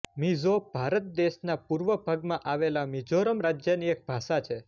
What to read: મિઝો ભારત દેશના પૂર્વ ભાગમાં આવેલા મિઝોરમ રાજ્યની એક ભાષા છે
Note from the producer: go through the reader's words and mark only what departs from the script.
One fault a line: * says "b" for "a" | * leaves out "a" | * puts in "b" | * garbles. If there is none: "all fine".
all fine